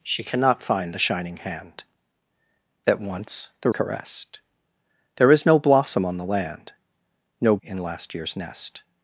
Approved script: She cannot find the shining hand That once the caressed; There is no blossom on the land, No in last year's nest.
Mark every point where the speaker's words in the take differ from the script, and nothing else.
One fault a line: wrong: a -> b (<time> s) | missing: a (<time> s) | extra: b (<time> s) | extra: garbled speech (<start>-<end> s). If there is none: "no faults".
no faults